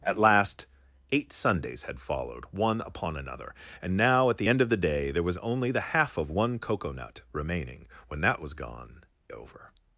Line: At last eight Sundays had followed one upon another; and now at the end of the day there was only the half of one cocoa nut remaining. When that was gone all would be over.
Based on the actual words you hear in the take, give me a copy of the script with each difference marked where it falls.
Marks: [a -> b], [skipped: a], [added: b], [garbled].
At last eight Sundays had followed one upon another; and now at the end of the day there was only the half of one cocoa nut remaining. When that was gone [skipped: all would be] over.